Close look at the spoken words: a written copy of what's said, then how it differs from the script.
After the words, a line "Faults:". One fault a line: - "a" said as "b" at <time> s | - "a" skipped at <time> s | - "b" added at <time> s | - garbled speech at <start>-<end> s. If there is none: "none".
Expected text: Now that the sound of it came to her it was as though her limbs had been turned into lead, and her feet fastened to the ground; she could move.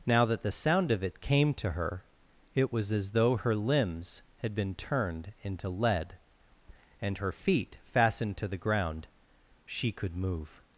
Now that the sound of it came to her it was as though her limbs had been turned into lead, and her feet fastened to the ground; she could move.
Faults:
none